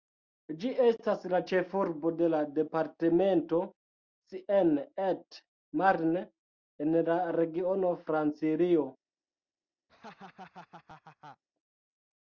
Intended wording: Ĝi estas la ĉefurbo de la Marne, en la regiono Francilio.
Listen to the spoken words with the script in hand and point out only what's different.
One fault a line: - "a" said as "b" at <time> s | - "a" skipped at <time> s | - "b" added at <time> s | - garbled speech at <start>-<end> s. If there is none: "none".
- "departemento Seine et" added at 2.6 s